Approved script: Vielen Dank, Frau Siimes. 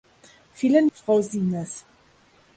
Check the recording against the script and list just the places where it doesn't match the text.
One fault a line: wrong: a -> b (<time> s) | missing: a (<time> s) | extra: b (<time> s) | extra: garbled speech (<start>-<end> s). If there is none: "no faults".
missing: Dank (0.9 s)